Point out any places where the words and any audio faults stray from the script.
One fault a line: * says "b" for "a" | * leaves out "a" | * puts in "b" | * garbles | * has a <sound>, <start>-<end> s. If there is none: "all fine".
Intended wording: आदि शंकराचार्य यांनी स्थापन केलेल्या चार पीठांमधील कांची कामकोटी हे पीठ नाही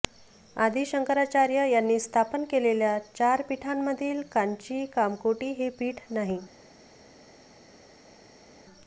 all fine